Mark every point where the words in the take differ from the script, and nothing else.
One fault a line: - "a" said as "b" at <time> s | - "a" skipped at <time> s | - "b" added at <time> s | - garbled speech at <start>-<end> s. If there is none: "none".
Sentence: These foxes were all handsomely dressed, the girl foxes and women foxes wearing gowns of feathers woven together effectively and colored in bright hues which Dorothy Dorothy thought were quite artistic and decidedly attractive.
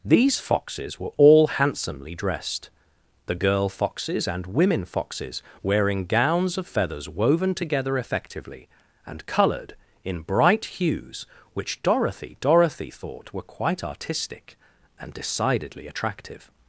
none